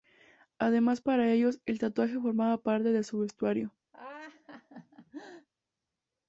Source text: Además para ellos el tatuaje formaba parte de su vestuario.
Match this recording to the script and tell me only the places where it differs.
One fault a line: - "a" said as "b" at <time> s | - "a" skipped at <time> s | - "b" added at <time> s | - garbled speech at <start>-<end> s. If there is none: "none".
none